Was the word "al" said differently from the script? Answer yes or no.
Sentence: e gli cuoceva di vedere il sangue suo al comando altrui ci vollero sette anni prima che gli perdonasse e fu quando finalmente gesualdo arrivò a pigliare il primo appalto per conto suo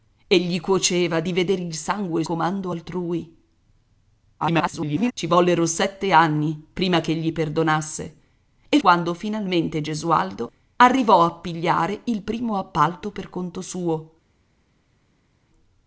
yes